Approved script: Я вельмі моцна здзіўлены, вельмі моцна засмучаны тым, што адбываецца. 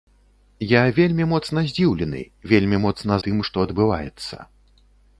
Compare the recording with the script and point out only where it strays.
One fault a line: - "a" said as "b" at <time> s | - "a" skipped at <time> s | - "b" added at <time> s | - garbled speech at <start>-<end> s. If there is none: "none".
- "засмучаны" skipped at 3.1 s